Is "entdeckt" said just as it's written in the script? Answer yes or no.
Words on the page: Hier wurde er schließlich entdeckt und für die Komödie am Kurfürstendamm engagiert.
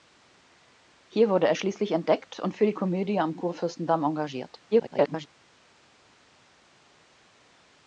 yes